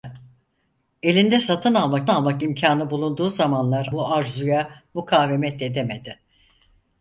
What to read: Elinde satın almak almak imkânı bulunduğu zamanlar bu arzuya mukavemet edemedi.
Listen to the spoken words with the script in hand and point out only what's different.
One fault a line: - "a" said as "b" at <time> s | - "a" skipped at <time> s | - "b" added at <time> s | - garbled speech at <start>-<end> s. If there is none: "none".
none